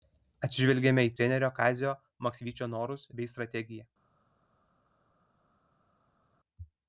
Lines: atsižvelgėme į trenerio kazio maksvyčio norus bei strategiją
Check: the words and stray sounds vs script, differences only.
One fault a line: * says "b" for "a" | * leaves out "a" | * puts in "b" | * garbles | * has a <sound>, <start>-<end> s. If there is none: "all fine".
all fine